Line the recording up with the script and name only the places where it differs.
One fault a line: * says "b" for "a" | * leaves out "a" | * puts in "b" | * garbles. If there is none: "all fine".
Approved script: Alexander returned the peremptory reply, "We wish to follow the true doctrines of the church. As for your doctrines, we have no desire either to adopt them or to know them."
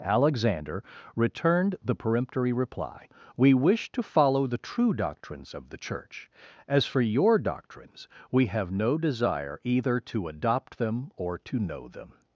all fine